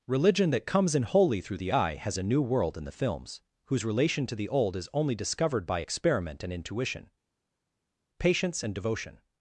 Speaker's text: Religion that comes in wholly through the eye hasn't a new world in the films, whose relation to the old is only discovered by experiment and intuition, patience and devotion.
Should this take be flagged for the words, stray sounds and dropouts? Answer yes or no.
yes